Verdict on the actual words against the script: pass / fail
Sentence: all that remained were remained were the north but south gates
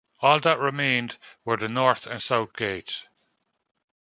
fail